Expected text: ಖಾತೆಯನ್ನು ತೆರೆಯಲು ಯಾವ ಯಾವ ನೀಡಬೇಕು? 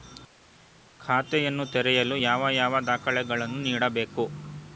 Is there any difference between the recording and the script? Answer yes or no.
yes